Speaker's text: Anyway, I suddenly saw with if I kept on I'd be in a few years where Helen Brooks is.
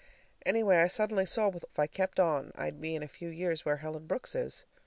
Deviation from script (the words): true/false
false